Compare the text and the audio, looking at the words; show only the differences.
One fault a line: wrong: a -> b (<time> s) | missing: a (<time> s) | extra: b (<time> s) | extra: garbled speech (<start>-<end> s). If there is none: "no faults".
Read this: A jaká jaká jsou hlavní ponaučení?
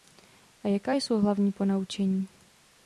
missing: jaká (0.9 s)